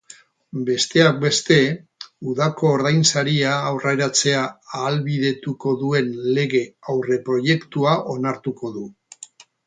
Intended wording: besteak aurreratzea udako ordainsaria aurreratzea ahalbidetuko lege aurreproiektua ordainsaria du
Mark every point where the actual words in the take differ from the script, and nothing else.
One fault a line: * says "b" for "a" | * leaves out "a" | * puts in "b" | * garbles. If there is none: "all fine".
* says "beste" for "aurreratzea"
* puts in "duen"
* says "onartuko" for "ordainsaria"